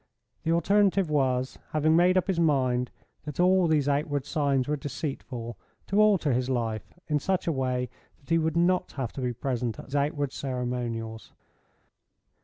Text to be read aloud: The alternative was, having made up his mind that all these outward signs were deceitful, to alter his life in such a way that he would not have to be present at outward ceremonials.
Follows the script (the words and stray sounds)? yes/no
yes